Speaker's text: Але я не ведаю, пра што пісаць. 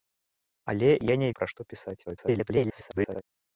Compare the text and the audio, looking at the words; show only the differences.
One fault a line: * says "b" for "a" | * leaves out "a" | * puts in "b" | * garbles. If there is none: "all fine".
* leaves out "ведаю"
* garbles